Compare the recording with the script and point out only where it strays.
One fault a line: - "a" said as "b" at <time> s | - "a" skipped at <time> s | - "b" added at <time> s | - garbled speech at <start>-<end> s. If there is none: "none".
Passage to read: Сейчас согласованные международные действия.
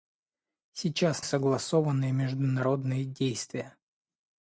none